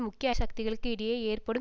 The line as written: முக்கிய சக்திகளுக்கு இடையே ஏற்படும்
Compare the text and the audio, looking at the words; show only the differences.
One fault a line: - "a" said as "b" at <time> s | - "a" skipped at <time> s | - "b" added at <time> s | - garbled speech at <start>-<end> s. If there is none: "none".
none